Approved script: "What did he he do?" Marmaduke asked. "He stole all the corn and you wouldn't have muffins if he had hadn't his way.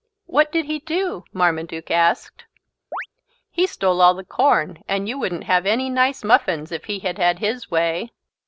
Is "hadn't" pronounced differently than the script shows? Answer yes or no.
yes